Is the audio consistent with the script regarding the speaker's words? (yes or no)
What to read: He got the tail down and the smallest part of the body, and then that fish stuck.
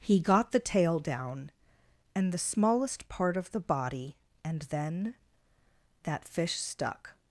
yes